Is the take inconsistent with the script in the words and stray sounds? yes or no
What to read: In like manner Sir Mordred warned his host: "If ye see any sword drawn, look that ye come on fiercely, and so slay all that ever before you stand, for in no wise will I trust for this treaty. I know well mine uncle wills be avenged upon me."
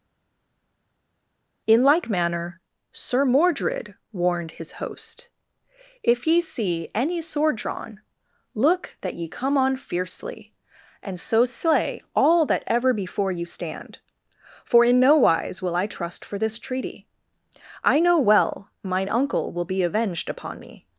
yes